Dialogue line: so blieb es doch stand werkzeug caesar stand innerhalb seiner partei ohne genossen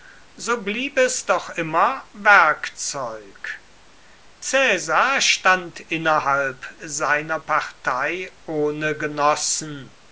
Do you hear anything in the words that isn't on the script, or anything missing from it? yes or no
yes